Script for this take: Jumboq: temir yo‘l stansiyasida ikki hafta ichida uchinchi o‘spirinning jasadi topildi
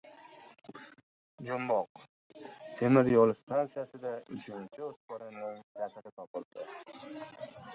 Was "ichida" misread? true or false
true